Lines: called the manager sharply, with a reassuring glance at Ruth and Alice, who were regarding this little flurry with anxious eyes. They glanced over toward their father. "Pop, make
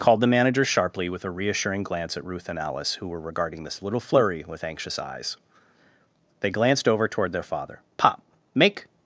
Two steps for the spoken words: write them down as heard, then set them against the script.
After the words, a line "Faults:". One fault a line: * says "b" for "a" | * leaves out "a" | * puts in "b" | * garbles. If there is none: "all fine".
called the manager sharply, with a reassuring glance at Ruth and Alice, who were regarding this little flurry with anxious eyes. They glanced over toward their father. "Pop, make
Faults:
all fine